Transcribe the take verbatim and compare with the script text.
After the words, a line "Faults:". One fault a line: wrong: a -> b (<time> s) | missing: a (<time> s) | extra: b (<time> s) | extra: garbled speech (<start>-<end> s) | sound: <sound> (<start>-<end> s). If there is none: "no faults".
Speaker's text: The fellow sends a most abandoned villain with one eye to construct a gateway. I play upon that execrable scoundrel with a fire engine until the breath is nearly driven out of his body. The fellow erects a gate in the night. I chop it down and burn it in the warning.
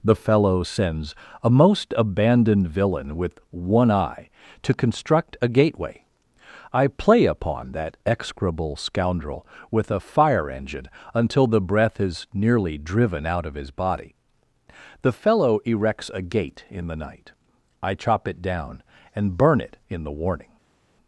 The fellow sends a most abandoned villain with one eye to construct a gateway. I play upon that execrable scoundrel with a fire engine until the breath is nearly driven out of his body. The fellow erects a gate in the night. I chop it down and burn it in the warning.
Faults:
no faults